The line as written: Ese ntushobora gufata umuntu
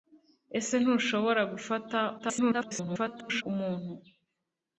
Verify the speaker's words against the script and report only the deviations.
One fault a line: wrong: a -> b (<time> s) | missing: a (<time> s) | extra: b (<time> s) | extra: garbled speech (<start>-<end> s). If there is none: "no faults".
extra: garbled speech (2.2-3.4 s)